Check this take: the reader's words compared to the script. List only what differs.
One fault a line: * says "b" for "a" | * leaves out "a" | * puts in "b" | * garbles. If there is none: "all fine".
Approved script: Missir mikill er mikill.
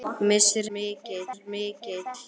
all fine